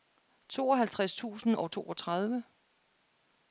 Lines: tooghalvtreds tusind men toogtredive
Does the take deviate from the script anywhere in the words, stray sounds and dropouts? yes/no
yes